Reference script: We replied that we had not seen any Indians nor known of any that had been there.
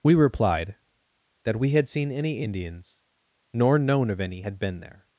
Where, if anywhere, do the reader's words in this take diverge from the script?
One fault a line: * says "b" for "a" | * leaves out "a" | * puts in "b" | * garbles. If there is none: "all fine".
* leaves out "not"
* leaves out "that"